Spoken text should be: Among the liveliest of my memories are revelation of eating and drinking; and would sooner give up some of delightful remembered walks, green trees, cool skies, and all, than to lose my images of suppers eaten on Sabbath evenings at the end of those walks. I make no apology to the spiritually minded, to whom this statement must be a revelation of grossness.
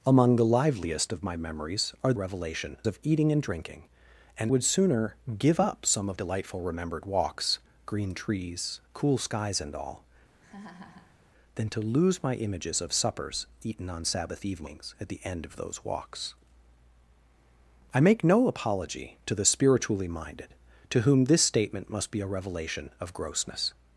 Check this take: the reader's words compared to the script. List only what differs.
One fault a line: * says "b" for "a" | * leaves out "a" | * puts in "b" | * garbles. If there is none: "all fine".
all fine